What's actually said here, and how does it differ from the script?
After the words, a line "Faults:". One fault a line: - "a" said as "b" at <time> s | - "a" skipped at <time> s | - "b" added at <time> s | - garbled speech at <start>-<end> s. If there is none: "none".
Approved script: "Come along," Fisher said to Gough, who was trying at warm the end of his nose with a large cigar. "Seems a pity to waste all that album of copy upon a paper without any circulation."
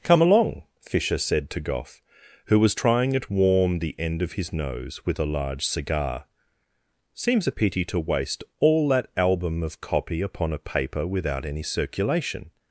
"Come along," Fisher said to Gough, who was trying at warm the end of his nose with a large cigar. "Seems a pity to waste all that album of copy upon a paper without any circulation."
Faults:
none